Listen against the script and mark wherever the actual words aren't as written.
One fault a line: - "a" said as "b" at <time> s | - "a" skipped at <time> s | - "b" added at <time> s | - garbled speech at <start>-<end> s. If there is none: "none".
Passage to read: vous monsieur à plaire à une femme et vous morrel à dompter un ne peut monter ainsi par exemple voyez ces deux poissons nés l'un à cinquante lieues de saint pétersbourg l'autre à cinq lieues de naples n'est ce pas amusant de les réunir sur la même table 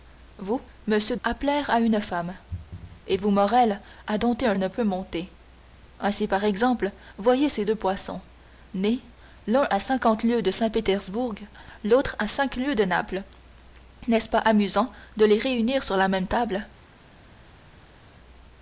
none